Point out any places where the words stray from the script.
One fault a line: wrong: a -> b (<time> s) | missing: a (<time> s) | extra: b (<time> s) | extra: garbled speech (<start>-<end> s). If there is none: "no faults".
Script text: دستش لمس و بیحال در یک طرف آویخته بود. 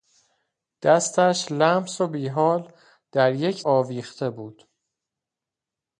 missing: طرف (3.6 s)